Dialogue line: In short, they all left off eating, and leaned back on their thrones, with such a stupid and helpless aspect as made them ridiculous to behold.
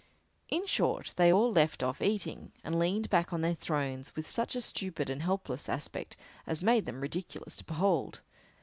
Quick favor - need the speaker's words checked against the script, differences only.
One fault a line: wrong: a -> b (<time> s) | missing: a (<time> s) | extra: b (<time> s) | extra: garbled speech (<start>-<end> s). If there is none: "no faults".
no faults